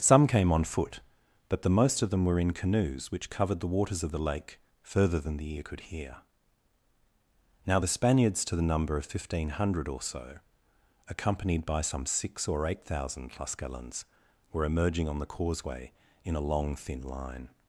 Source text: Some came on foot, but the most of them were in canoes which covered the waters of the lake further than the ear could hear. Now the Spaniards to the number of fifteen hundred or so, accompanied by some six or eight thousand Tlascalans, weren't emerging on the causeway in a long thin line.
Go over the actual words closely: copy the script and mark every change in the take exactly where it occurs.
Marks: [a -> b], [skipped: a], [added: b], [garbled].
Some came on foot, but the most of them were in canoes which covered the waters of the lake further than the ear could hear. Now the Spaniards to the number of fifteen hundred or so, accompanied by some six or eight thousand Tlascalans, [weren't -> were] emerging on the causeway in a long thin line.